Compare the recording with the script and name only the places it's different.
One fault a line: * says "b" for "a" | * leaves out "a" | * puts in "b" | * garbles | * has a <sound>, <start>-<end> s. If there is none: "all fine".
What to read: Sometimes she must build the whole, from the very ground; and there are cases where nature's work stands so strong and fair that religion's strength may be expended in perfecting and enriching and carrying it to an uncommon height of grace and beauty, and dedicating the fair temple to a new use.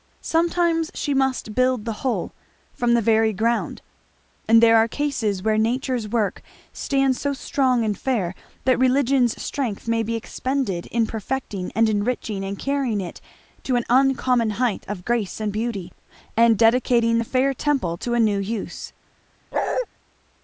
* has a bark, 19.5-19.9 s